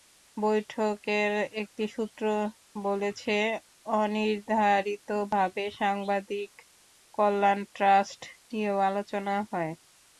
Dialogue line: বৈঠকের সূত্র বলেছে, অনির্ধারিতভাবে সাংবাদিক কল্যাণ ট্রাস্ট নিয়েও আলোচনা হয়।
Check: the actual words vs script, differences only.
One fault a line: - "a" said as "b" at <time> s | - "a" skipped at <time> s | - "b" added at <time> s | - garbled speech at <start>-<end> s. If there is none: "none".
- "একটি" added at 1.6 s